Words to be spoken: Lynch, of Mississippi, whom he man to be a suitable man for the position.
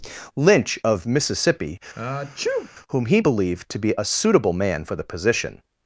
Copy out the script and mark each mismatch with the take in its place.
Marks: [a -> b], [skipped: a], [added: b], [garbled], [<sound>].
Lynch, of Mississippi, [sneeze] whom he [man -> believed] to be a suitable man for the position.